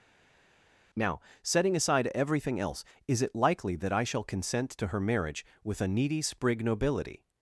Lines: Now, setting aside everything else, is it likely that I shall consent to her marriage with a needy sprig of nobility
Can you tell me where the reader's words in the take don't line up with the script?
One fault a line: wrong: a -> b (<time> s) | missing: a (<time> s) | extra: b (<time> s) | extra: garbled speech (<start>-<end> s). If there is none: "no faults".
missing: of (6.6 s)